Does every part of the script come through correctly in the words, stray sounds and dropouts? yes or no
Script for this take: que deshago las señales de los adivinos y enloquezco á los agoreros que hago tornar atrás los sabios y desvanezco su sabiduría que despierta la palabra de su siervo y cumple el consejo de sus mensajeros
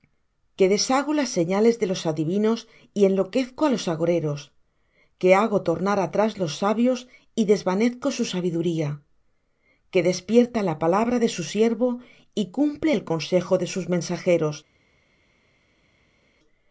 yes